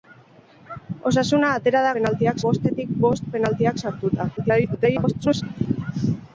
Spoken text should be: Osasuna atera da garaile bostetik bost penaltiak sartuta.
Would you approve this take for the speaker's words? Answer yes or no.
no